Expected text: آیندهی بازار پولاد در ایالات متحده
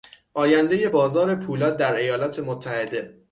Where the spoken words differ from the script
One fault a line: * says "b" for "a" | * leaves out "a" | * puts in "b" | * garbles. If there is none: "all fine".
all fine